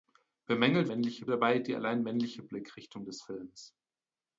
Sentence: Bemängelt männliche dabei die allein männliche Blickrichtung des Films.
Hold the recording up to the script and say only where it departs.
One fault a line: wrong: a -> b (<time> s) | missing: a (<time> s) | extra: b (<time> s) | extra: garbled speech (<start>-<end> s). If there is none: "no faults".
no faults